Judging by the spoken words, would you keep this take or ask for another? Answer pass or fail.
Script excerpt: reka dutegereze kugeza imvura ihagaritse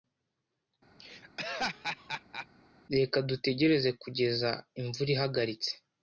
pass